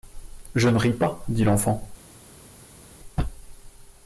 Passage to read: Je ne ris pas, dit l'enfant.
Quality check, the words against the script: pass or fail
pass